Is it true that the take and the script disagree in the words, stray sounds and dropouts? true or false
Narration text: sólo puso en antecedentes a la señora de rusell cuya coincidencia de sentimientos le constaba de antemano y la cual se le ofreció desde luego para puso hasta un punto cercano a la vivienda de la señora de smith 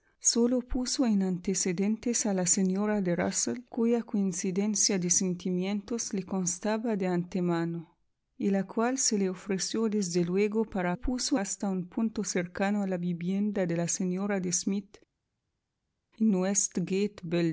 false